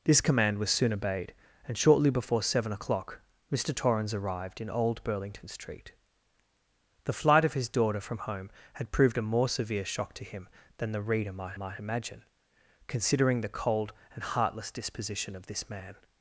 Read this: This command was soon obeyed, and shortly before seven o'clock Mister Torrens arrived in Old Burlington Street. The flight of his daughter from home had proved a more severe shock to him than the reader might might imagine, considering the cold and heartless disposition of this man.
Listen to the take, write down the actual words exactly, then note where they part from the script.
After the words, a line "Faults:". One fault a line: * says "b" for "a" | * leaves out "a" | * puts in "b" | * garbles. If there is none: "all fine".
This command was soon obeyed, and shortly before seven o'clock Mister Torrens arrived in Old Burlington Street. The flight of his daughter from home had proved a more severe shock to him than the reader might might imagine, considering the cold and heartless disposition of this man.
Faults:
all fine